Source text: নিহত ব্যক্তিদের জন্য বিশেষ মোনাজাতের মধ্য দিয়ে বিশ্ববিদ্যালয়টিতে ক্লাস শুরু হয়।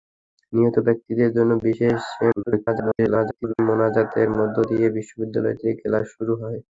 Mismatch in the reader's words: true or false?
true